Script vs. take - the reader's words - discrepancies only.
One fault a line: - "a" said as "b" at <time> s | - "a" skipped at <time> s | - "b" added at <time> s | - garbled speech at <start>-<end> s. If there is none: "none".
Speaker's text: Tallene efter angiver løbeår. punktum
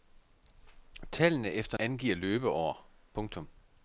none